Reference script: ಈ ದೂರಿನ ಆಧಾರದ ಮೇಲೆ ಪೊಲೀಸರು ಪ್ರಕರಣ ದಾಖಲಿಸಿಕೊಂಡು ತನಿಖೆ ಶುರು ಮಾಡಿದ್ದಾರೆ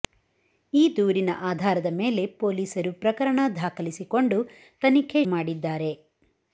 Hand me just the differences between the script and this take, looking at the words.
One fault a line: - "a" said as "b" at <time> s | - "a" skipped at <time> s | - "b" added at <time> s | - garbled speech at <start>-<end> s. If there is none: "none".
- "ಶುರು" skipped at 5.2 s